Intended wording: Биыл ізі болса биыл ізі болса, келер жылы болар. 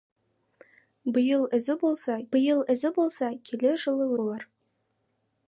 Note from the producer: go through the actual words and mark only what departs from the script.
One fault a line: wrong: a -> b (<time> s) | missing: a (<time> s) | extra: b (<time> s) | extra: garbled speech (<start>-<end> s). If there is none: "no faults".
no faults